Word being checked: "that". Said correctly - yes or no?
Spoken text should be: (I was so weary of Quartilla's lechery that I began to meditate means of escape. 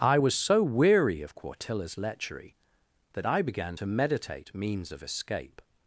yes